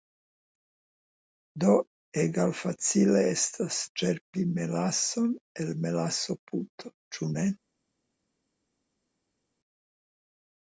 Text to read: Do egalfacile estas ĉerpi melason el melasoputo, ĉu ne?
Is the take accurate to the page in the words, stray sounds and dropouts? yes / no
yes